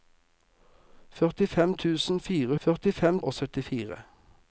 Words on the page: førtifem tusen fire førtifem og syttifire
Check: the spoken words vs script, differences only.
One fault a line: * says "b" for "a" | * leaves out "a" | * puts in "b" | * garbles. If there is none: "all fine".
all fine